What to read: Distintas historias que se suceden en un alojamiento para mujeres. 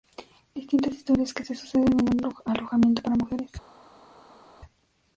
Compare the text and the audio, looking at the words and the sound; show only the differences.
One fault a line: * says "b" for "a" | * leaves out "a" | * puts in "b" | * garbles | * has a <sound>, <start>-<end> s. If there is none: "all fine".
all fine